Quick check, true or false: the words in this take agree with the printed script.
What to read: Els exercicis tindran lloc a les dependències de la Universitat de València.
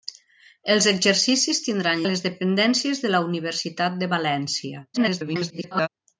false